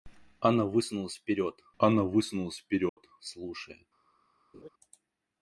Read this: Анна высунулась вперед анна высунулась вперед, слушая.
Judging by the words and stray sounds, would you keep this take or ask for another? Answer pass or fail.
fail